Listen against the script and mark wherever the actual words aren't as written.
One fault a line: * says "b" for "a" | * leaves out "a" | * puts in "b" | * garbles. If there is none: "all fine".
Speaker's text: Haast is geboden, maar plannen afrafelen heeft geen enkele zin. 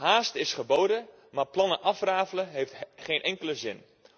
all fine